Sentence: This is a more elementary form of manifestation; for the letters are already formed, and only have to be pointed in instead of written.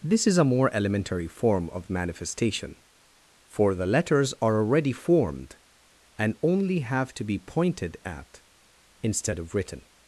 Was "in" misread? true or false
true